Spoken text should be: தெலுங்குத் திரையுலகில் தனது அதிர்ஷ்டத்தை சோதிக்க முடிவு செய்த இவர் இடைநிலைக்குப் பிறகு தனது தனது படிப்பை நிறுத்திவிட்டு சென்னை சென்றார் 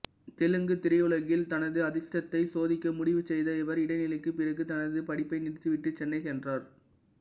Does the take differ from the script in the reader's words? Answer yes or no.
yes